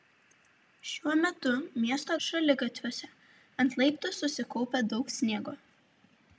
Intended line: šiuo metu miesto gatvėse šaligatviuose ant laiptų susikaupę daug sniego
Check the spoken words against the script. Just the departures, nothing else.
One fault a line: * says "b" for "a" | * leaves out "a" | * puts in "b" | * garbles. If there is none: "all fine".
* leaves out "gatvėse"